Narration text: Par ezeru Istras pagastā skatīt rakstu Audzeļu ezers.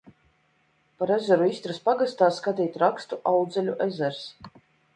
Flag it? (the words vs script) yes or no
no